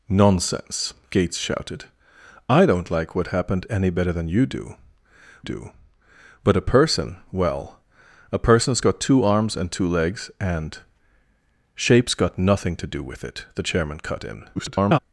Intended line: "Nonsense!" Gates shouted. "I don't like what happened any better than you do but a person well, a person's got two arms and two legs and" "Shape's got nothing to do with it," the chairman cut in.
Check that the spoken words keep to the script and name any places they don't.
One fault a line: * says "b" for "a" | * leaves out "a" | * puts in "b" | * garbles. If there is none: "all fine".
* puts in "do"
* garbles